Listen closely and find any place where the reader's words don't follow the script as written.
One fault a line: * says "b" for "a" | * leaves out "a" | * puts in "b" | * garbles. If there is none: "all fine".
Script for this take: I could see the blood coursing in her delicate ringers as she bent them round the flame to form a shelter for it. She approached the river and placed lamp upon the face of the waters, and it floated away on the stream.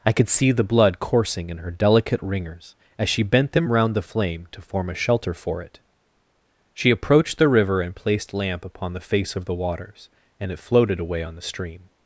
all fine